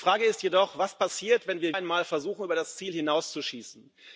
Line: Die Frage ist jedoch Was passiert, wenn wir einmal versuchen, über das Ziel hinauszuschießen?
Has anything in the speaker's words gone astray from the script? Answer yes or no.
no